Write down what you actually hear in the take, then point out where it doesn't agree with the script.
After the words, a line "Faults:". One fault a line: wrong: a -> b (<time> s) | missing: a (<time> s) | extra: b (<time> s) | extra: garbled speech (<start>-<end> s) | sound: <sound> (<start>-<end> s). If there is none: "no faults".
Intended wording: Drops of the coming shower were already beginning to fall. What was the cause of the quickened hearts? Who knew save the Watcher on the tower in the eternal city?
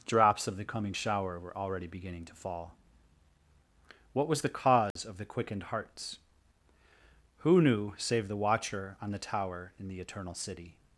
Drops of the coming shower were already beginning to fall. What was the cause of the quickened hearts? Who knew save the Watcher on the tower in the eternal city?
Faults:
sound: dropout (4.9-5.0 s)